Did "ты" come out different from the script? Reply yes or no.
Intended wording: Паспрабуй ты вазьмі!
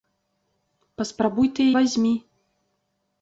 no